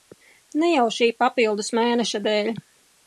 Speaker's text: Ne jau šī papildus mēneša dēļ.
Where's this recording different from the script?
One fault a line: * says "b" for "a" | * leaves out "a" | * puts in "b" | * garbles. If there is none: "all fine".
all fine